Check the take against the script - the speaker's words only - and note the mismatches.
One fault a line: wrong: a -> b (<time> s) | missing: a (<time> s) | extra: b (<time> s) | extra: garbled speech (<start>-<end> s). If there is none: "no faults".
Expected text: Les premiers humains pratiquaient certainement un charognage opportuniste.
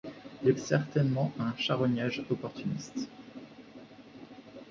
missing: premiers humains pratiquaient (0.5 s)